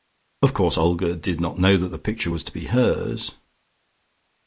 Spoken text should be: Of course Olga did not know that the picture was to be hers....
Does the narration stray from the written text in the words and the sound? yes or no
no